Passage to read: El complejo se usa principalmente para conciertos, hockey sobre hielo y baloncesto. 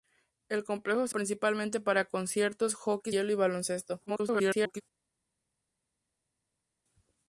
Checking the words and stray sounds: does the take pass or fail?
fail